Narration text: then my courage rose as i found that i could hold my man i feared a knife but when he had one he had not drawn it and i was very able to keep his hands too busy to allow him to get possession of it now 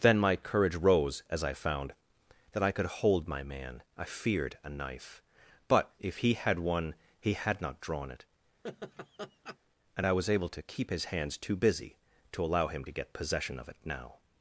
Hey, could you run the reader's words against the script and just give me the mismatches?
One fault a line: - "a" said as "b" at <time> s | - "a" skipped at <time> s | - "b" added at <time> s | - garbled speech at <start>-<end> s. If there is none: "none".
- "when" said as "if" at 6.0 s
- "very" skipped at 10.3 s